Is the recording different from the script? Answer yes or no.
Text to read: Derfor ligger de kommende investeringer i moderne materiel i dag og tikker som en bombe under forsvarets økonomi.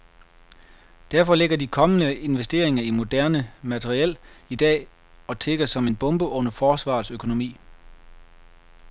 no